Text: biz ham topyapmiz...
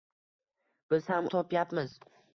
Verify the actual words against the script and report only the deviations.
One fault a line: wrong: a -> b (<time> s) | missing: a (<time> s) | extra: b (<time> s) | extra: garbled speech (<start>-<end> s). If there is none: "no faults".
no faults